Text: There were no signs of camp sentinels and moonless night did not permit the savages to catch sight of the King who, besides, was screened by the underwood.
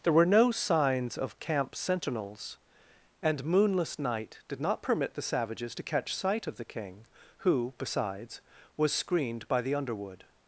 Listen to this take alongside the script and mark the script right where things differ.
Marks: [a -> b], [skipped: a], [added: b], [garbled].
There were no signs of camp sentinels and moonless night did not permit the savages to catch sight of the King who, besides, was screened by the underwood.